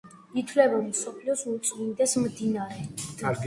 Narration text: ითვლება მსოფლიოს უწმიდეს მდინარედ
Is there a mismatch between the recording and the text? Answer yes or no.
no